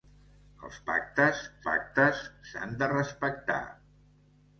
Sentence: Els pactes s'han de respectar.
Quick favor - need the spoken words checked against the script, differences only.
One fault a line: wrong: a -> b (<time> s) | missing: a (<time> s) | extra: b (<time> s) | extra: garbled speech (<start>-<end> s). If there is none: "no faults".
extra: pactes (1.7 s)